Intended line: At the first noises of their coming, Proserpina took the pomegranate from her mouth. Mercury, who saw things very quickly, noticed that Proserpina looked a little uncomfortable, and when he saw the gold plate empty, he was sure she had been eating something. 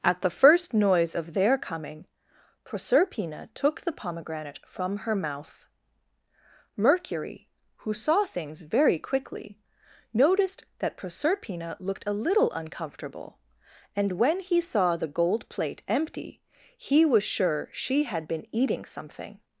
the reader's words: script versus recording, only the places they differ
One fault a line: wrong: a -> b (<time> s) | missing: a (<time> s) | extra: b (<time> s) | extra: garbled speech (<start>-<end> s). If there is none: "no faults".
wrong: noises -> noise (0.7 s)